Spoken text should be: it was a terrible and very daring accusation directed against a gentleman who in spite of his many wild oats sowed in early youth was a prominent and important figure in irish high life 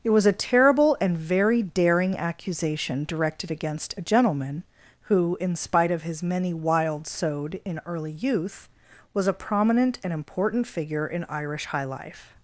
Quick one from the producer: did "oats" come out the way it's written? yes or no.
no